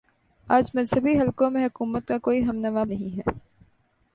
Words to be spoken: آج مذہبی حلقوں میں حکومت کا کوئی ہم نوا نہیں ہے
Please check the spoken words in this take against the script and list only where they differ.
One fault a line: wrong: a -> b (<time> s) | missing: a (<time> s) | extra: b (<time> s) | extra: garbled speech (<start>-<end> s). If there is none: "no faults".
no faults